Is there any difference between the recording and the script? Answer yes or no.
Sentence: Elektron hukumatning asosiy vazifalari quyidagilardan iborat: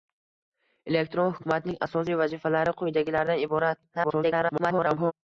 yes